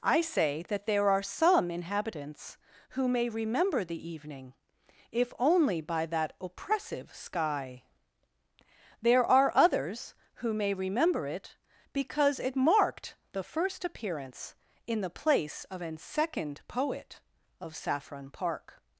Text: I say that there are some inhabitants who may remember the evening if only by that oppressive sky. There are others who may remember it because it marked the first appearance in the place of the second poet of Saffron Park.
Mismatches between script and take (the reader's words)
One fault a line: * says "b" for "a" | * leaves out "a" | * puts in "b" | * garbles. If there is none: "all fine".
* says "an" for "the"